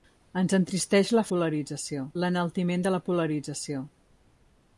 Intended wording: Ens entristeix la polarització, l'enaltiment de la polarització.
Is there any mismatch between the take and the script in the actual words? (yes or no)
no